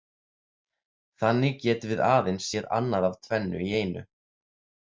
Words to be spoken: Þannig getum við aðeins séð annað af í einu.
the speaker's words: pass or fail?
fail